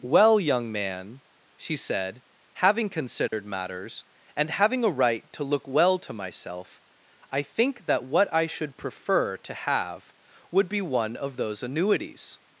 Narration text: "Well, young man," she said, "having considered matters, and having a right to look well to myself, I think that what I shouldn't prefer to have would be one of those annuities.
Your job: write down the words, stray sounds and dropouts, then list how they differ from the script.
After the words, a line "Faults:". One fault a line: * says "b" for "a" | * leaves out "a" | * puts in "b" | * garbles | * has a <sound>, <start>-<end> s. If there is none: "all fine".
"Well, young man," she said, "having considered matters, and having a right to look well to myself, I think that what I should prefer to have would be one of those annuities.
Faults:
* has a dropout, 3.3-3.3 s
* says "should" for "shouldn't"